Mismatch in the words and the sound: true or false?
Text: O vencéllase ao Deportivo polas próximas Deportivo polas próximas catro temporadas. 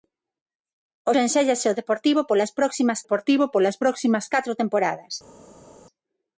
false